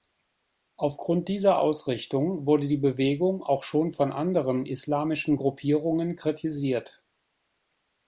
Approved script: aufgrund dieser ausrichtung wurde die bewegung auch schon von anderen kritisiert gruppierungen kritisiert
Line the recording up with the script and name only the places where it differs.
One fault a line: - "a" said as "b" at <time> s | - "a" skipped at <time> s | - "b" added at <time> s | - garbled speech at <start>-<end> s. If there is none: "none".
- "kritisiert" said as "islamischen" at 4.7 s